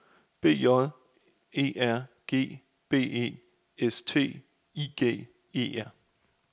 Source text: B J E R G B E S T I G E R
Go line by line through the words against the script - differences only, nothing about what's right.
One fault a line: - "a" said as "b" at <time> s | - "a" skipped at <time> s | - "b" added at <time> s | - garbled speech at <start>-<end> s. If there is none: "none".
none